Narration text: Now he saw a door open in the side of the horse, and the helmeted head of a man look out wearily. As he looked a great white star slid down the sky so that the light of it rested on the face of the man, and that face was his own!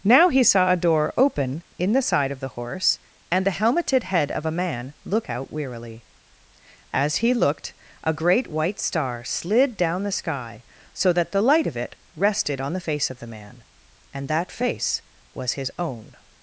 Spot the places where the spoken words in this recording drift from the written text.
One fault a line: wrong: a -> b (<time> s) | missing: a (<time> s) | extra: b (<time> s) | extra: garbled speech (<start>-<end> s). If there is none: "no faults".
no faults